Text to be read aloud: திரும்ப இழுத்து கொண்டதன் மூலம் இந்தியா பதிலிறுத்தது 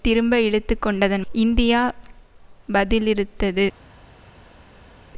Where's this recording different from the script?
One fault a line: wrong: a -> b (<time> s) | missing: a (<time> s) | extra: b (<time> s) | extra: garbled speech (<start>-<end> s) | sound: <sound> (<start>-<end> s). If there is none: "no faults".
missing: மூலம் (1.2 s)